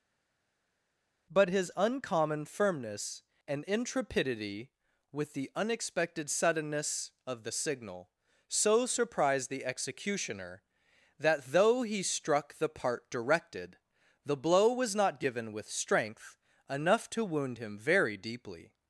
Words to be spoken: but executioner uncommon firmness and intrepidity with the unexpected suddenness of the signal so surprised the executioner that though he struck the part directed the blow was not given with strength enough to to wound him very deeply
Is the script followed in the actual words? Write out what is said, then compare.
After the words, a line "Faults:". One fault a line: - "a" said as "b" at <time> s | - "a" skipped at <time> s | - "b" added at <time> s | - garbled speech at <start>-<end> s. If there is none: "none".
but his uncommon firmness and intrepidity with the unexpected suddenness of the signal so surprised the executioner that though he struck the part directed the blow was not given with strength enough to wound him very deeply
Faults:
- "executioner" said as "his" at 1.5 s
- "to" skipped at 17.2 s